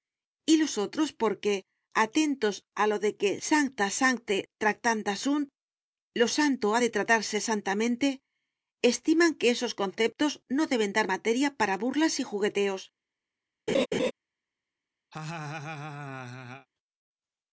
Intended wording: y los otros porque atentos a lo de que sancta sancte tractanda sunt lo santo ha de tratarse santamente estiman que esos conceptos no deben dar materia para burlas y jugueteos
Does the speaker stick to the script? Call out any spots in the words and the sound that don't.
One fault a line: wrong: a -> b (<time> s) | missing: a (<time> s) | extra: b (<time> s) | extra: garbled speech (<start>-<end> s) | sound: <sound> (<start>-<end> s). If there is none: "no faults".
sound: laugh (13.7-14.1 s)
sound: laugh (15.1-16.7 s)